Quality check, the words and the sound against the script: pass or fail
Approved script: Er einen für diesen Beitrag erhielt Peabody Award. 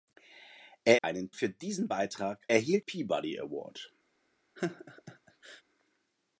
fail